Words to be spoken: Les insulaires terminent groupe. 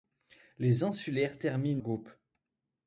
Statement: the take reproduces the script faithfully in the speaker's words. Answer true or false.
true